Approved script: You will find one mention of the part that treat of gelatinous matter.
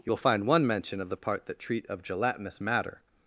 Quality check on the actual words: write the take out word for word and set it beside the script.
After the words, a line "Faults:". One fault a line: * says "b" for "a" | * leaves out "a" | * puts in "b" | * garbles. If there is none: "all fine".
You will find one mention of the part that treat of gelatinous matter.
Faults:
all fine